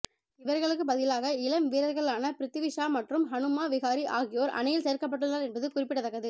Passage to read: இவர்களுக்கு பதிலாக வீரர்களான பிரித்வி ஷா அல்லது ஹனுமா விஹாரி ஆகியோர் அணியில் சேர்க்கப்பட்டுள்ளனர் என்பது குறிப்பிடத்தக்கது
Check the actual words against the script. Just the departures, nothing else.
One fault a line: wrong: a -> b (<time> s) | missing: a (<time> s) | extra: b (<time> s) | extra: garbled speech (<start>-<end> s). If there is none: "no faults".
extra: இளம் (1.4 s)
wrong: அல்லது -> மற்றும் (3.0 s)